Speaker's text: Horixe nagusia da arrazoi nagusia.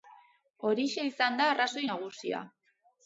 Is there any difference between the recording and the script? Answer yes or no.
yes